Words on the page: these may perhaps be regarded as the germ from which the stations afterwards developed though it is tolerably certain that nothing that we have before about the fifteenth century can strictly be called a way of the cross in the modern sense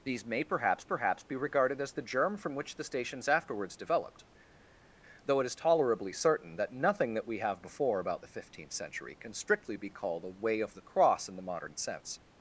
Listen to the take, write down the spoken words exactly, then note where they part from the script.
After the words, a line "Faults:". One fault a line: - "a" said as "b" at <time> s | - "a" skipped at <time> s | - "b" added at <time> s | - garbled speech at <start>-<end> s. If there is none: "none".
these may perhaps perhaps be regarded as the germ from which the stations afterwards developed though it is tolerably certain that nothing that we have before about the fifteenth century can strictly be called a way of the cross in the modern sense
Faults:
- "perhaps" added at 0.8 s